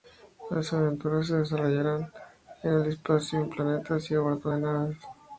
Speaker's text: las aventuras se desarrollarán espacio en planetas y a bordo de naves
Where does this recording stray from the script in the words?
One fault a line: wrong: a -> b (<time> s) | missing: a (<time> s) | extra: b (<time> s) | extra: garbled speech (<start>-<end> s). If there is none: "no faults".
extra: en el (2.6 s)